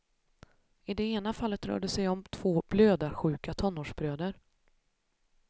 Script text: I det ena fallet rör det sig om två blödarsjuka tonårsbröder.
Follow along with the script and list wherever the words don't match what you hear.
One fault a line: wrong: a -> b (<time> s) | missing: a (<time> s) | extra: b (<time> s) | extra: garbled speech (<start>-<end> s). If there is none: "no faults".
no faults